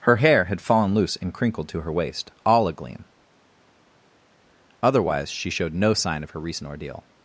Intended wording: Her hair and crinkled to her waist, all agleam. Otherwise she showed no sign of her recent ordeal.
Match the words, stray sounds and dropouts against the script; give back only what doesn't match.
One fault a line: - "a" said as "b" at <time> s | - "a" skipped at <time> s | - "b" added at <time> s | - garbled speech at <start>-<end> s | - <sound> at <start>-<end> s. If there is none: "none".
- "had fallen loose" added at 0.4 s